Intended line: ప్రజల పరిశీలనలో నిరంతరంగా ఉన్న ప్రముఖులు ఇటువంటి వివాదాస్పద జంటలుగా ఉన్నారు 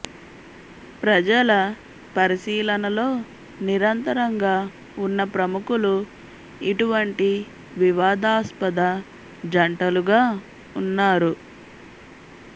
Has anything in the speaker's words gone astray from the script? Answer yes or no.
no